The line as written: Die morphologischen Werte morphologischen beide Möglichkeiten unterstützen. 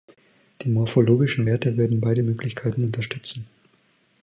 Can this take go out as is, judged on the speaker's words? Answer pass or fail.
fail